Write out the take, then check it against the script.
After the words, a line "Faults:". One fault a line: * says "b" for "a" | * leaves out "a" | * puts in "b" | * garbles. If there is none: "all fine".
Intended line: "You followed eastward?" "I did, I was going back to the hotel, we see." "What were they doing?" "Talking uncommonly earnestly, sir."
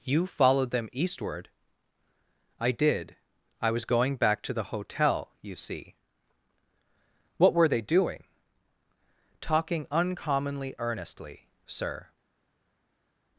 "You followed them eastward?" "I did, I was going back to the hotel, you see." "What were they doing?" "Talking uncommonly earnestly, sir."
Faults:
* puts in "them"
* says "you" for "we"